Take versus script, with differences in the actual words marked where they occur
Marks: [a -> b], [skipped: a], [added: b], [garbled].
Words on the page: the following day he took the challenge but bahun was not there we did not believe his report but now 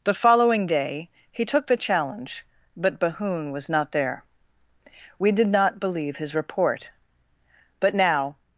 the following day he took the challenge but bahun was not there we did not believe his report but now